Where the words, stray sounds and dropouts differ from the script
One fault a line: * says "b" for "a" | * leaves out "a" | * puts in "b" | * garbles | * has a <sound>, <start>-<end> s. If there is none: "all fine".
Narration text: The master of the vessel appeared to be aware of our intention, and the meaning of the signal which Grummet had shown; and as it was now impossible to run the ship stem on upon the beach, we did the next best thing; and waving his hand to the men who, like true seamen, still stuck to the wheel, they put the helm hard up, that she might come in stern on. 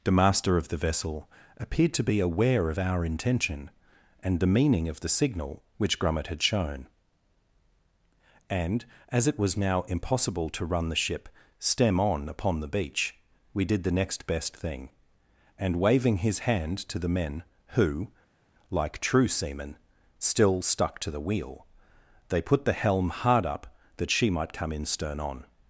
all fine